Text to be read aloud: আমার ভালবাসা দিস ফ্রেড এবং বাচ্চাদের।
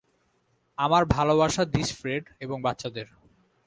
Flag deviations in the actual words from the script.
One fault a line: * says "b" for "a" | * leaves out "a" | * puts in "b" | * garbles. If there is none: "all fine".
all fine